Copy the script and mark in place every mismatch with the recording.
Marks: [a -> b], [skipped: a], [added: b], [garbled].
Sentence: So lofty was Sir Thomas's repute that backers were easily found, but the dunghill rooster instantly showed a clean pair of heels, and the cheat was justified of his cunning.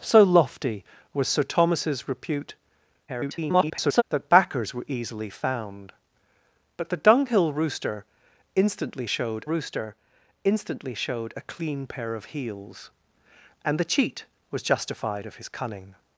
So lofty was Sir Thomas's repute [garbled] that backers were easily found, but the dunghill rooster instantly showed [added: rooster instantly showed] a clean pair of heels, and the cheat was justified of his cunning.